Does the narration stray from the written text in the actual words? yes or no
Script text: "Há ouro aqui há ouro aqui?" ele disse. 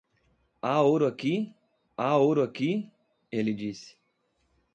no